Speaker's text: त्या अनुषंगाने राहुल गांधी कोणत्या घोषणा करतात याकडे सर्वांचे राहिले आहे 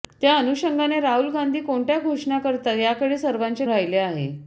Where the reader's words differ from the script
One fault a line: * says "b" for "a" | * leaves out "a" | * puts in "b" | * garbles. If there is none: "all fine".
all fine